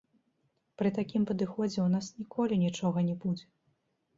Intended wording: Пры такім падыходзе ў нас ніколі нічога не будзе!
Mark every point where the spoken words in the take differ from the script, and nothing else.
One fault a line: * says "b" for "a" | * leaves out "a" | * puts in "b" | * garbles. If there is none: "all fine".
all fine